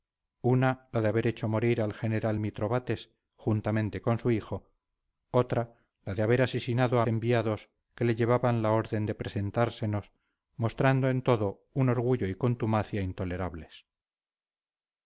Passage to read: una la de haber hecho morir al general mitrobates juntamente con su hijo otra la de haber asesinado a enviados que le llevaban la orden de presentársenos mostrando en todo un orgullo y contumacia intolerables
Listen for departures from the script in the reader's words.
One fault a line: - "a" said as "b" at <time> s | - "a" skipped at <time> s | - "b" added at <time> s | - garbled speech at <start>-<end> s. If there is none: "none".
none